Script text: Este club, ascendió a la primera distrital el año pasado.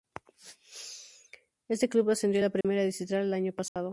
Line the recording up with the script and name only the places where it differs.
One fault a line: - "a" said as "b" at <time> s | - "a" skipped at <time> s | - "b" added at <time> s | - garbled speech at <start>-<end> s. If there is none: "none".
none